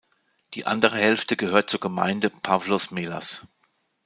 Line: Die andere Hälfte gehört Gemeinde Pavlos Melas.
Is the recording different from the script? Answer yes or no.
yes